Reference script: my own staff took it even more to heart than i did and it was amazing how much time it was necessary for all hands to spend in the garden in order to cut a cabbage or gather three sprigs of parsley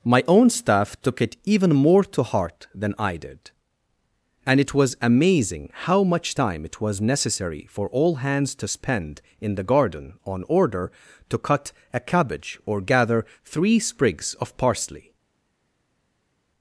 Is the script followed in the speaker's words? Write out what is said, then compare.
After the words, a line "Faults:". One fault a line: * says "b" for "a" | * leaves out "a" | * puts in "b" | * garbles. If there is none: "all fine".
my own staff took it even more to heart than i did and it was amazing how much time it was necessary for all hands to spend in the garden on order to cut a cabbage or gather three sprigs of parsley
Faults:
* says "on" for "in"